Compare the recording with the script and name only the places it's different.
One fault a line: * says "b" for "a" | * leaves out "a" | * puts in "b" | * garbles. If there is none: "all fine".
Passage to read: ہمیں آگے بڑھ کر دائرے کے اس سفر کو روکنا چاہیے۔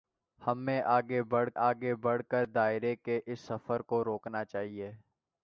* puts in "آگے بڑھ"